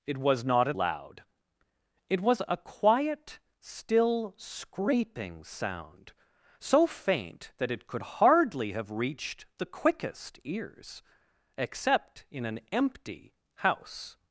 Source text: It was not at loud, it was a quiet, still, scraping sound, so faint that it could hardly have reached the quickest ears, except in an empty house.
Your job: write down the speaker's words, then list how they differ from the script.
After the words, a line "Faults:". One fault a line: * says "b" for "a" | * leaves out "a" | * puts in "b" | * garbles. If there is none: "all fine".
It was not at loud, it was a quiet, still, scraping sound, so faint that it could hardly have reached the quickest ears, except in an empty house.
Faults:
all fine